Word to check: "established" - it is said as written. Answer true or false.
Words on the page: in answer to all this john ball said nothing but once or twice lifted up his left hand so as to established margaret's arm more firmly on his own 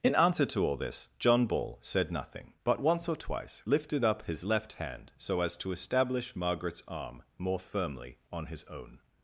false